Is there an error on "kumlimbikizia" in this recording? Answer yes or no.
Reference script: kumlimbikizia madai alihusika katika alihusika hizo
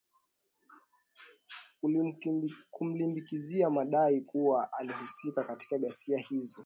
no